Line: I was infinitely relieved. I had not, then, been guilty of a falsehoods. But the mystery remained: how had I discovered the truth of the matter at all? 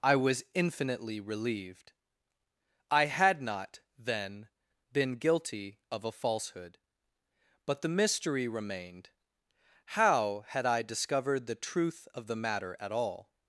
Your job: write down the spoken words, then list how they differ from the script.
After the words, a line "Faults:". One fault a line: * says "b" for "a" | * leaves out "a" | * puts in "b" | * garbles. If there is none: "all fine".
I was infinitely relieved. I had not, then, been guilty of a falsehood. But the mystery remained: how had I discovered the truth of the matter at all?
Faults:
* says "falsehood" for "falsehoods"